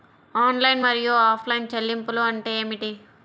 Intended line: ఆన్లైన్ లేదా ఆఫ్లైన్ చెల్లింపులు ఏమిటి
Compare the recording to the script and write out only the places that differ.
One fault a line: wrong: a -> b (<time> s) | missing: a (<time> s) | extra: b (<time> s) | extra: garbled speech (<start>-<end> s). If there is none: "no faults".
wrong: లేదా -> మరియు (0.8 s)
extra: అంటే (2.2 s)